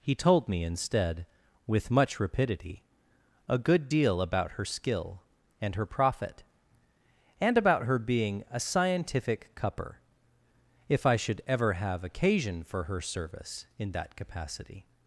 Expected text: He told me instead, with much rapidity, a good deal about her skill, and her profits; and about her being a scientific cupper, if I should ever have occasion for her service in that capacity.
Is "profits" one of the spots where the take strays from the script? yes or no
yes